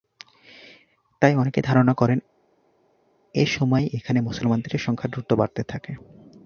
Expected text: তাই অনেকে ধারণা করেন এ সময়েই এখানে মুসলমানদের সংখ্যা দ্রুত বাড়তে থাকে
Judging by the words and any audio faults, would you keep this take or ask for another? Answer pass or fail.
pass